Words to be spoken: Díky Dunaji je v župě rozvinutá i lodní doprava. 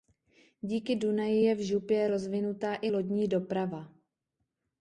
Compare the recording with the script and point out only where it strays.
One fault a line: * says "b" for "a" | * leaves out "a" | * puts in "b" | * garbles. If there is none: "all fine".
all fine